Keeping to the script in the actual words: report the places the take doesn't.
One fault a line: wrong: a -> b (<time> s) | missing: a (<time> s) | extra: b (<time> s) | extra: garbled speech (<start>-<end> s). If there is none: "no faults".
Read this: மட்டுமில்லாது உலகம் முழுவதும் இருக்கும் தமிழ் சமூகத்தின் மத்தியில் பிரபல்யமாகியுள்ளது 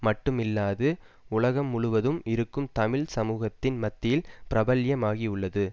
no faults